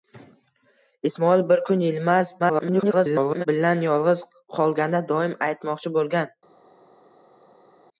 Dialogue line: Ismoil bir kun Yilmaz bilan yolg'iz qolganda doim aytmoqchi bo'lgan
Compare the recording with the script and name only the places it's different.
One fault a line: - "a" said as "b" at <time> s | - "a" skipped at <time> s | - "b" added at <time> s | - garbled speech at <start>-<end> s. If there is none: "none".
- garbled speech at 2.4-3.5 s